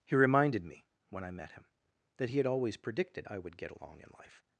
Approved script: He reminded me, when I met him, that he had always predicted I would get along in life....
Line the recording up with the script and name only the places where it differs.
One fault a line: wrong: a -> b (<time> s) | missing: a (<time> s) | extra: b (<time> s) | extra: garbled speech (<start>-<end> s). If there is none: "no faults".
no faults